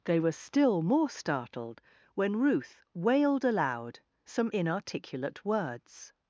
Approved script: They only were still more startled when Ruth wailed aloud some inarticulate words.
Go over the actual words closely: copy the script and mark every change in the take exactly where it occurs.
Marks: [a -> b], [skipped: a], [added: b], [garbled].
They [skipped: only] were still more startled when Ruth wailed aloud some inarticulate words.